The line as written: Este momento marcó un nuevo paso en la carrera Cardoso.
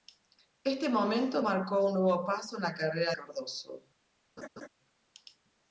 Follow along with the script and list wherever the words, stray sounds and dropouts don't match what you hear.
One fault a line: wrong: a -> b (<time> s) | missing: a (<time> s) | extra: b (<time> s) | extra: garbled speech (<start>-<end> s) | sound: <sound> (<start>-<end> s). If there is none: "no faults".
sound: laugh (4.4-4.7 s)